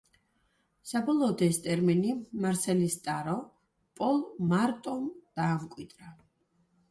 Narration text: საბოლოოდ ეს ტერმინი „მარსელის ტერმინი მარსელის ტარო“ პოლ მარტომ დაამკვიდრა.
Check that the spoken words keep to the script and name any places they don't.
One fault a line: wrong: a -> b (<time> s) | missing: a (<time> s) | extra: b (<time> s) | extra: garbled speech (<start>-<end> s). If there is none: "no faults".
missing: ტერმინი მარსელის (3.0 s)